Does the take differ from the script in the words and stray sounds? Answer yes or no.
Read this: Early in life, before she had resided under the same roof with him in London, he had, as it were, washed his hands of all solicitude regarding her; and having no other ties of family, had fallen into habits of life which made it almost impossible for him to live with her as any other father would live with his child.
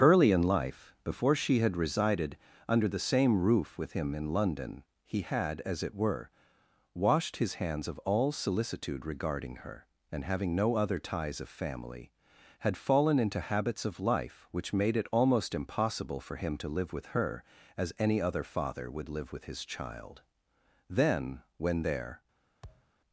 yes